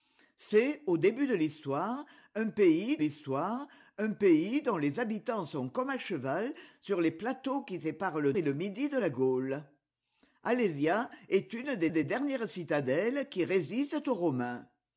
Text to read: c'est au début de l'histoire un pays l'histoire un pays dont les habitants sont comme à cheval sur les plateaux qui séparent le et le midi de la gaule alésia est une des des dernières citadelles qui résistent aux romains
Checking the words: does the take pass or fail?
pass